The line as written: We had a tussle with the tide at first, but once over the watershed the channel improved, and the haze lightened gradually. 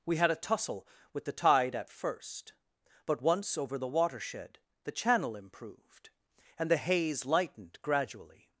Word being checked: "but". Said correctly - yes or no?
yes